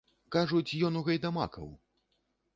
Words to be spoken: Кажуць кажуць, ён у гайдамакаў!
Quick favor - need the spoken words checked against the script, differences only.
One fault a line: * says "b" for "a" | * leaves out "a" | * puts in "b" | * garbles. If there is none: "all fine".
* leaves out "кажуць"